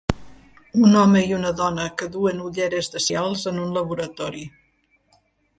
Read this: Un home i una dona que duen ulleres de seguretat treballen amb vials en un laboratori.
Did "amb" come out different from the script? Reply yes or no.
yes